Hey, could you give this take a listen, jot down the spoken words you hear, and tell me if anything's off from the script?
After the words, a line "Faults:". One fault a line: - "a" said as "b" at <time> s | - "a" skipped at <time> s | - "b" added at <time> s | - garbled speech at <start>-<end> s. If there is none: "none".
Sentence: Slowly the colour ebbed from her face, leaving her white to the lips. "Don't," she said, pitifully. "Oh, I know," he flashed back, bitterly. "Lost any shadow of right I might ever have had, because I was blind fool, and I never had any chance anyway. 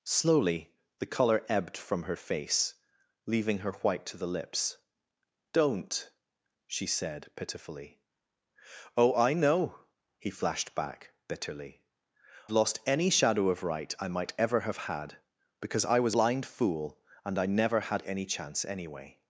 Slowly the colour ebbed from her face, leaving her white to the lips. "Don't," she said, pitifully. "Oh, I know," he flashed back, bitterly. "Lost any shadow of right I might ever have had, because I was blind fool, and I never had any chance anyway.
Faults:
none